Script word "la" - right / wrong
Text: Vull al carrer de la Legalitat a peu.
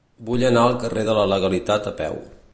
right